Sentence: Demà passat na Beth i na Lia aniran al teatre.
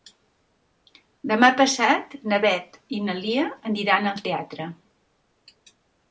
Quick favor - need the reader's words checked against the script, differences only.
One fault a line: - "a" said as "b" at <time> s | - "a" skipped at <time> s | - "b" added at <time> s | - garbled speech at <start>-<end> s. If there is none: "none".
none